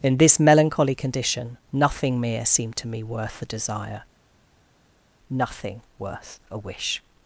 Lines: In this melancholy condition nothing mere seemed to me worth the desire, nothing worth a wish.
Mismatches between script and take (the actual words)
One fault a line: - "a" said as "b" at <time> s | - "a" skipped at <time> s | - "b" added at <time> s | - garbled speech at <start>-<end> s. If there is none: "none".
none